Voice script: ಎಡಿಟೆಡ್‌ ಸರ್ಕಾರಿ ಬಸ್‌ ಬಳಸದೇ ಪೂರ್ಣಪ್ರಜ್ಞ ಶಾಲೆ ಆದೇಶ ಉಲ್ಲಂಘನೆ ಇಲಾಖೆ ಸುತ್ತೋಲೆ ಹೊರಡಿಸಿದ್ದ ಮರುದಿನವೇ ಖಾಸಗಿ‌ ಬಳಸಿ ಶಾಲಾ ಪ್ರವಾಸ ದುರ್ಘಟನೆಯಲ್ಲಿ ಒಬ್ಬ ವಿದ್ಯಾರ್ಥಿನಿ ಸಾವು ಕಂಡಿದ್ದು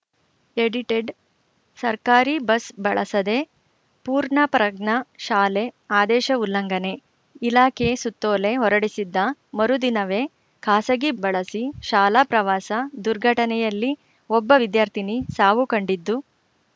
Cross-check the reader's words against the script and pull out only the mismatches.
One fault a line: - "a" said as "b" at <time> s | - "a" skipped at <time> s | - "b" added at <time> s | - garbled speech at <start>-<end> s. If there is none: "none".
none